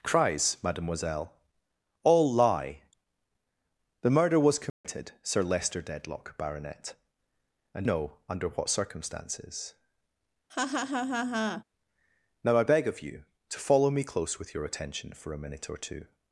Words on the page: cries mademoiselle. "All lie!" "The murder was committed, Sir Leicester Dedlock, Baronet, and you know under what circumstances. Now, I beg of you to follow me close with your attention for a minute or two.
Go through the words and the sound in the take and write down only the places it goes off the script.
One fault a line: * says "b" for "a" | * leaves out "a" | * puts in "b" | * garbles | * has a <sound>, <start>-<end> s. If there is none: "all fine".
* has a dropout, 4.7-4.8 s
* leaves out "you"
* has a laugh, 10.5-11.6 s